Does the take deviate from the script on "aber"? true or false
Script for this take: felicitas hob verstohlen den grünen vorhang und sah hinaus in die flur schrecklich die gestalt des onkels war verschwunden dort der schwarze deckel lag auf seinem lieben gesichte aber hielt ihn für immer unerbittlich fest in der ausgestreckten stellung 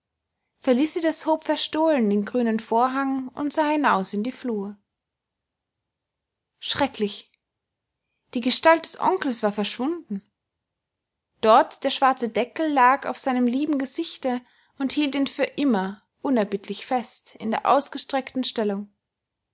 true